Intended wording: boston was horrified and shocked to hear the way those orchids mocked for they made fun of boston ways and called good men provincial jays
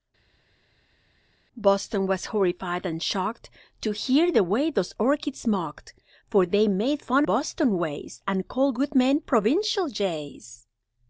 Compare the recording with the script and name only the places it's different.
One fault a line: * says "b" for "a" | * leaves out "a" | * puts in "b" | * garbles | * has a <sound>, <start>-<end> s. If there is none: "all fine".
* leaves out "of"